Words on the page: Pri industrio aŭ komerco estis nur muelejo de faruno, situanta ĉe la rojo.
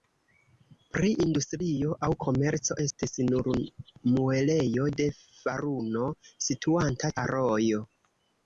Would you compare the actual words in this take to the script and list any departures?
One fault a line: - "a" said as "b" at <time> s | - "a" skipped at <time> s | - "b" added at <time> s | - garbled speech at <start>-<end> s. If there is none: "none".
- "ĉe" skipped at 7.2 s